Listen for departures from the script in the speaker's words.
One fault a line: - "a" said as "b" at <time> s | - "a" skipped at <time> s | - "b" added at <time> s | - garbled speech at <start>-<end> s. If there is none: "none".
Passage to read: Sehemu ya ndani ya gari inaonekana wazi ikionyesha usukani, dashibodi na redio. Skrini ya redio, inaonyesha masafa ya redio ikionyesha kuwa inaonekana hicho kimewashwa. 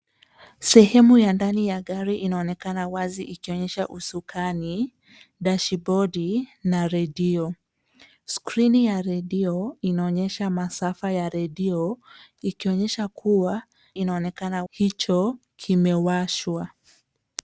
none